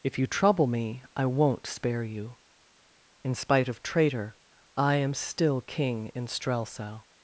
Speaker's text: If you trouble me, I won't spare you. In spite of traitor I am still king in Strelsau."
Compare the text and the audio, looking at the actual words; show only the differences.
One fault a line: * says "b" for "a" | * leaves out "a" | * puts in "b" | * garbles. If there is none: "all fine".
all fine